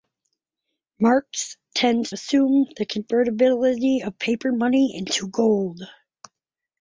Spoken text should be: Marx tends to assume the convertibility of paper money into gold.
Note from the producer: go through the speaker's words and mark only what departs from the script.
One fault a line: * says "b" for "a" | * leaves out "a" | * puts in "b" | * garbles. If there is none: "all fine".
* leaves out "to"